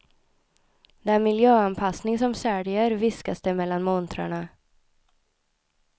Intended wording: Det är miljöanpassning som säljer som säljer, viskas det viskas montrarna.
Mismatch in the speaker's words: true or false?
true